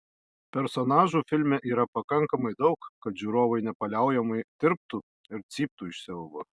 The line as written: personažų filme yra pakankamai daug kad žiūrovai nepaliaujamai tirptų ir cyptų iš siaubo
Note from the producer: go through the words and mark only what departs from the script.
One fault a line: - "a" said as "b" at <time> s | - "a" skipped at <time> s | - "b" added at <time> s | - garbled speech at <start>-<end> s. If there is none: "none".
none